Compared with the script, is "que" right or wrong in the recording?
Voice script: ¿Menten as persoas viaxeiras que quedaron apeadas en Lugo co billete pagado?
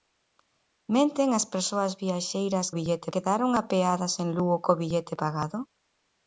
wrong